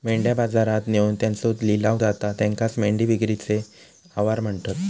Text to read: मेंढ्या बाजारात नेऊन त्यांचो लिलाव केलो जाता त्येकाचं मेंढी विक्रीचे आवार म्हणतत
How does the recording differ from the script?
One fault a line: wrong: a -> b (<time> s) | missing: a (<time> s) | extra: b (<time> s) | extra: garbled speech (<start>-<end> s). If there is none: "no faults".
missing: केलो (2.0 s)